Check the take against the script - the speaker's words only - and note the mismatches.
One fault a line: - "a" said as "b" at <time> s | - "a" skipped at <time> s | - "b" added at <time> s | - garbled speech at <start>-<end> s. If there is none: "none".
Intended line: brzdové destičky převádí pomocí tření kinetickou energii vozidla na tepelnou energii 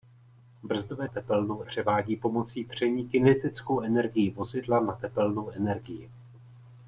- "destičky" said as "tepelnou" at 1.0 s